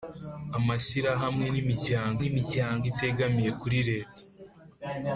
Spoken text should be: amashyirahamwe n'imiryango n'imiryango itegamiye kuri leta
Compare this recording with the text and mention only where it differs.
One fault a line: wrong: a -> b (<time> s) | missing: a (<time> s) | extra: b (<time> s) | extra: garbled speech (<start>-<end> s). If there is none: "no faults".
no faults